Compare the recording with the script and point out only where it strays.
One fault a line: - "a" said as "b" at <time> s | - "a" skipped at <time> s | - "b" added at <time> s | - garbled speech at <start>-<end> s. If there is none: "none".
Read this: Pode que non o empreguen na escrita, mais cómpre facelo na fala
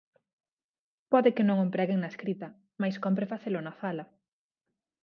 none